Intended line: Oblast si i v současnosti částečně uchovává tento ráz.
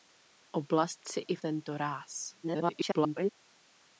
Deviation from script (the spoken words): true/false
true